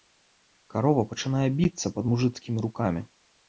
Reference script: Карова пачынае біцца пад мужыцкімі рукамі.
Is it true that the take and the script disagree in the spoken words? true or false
false